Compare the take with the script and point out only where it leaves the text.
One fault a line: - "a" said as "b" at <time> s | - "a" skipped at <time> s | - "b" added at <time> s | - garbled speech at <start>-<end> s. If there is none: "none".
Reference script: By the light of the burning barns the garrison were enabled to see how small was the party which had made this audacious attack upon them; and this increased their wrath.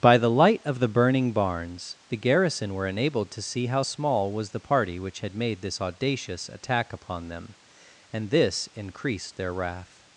none